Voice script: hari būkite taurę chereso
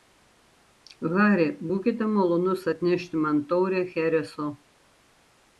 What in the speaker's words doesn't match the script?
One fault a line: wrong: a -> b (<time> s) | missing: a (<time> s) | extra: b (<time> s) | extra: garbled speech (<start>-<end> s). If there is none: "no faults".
extra: malonus atnešti man (2.1 s)